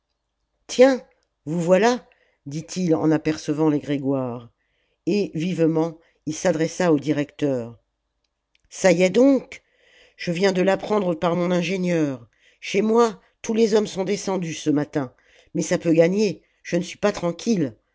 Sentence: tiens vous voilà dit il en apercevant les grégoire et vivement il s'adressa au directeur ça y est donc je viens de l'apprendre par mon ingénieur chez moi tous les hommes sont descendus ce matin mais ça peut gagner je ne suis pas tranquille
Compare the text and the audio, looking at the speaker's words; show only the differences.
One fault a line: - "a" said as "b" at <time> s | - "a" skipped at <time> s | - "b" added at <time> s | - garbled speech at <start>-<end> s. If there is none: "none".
none